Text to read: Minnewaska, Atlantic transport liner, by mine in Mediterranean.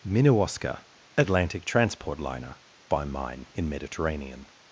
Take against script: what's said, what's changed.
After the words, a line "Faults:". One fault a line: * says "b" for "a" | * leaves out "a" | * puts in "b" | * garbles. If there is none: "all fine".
Minnewaska, Atlantic transport liner, by mine in Mediterranean.
Faults:
all fine